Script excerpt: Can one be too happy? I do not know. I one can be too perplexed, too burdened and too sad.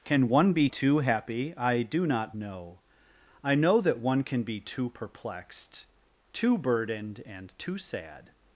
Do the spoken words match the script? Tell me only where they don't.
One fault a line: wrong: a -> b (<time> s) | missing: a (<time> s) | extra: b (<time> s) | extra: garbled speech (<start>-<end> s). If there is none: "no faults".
extra: know that (3.5 s)